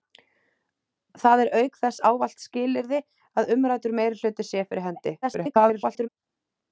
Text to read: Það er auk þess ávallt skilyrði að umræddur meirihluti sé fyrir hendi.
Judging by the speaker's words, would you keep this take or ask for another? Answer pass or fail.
fail